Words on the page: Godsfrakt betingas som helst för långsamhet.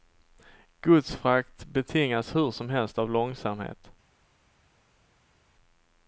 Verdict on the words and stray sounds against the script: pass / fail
fail